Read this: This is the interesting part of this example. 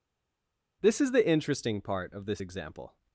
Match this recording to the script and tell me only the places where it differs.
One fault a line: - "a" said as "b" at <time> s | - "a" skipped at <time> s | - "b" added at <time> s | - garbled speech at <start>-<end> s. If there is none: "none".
none